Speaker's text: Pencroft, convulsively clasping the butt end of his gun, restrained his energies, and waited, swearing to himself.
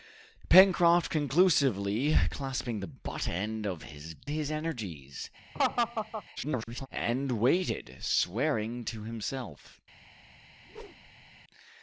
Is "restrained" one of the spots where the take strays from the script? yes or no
yes